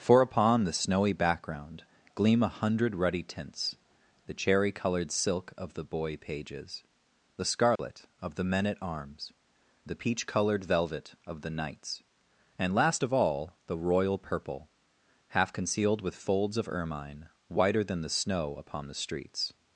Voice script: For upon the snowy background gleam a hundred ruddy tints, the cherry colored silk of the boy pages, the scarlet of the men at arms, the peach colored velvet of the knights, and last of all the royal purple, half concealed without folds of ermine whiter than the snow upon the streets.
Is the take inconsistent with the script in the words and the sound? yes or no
yes